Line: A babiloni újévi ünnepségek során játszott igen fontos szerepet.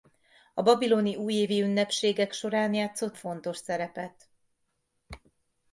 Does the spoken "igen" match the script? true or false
false